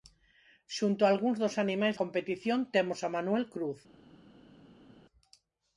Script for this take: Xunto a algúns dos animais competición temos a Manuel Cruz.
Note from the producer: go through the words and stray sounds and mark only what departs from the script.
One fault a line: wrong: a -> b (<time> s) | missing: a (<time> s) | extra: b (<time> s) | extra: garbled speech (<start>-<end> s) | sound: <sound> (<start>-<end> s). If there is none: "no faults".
no faults